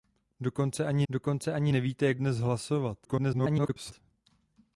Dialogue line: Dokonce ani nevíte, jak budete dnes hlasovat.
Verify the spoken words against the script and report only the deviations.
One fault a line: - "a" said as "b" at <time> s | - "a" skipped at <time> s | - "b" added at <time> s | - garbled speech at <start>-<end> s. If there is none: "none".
- "dokonce ani" added at 1.1 s
- "budete" skipped at 2.2 s
- garbled speech at 3.0-3.9 s